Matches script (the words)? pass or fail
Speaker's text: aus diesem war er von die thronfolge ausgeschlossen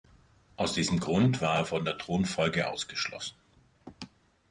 fail